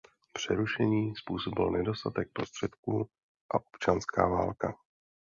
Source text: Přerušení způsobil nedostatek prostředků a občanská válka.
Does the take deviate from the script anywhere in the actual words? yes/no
no